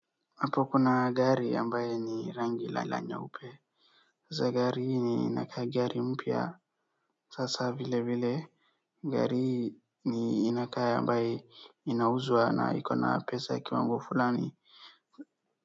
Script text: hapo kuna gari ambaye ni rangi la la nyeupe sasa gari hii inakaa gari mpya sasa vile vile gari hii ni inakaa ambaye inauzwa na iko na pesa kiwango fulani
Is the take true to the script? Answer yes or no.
yes